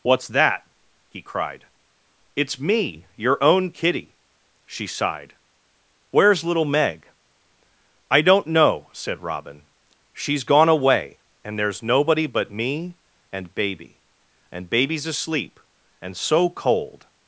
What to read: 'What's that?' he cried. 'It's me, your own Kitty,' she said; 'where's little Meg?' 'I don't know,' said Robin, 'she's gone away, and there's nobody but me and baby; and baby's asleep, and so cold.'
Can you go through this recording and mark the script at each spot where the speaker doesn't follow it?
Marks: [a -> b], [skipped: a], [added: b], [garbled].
'What's that?' he cried. 'It's me, your own Kitty,' she [said; -> sighed] 'where's little Meg?' 'I don't know,' said Robin, 'she's gone away, and there's nobody but me and baby; and baby's asleep, and so cold.'